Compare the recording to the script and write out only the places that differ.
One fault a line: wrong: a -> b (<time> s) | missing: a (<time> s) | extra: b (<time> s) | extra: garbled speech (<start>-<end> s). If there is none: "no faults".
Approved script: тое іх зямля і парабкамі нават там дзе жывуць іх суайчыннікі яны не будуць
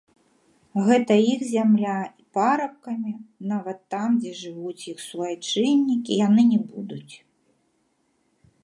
wrong: тое -> гэта (0.8 s)